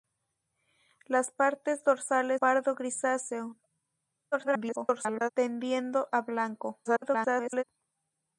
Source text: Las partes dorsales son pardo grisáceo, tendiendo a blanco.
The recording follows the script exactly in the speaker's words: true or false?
false